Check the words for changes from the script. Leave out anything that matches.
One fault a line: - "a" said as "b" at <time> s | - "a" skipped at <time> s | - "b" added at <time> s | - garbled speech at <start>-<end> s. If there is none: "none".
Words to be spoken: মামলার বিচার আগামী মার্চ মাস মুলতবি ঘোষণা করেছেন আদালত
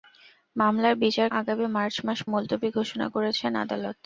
none